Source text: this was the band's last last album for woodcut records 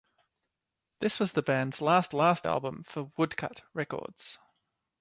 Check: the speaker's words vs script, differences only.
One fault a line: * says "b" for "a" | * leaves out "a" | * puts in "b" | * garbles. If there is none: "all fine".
all fine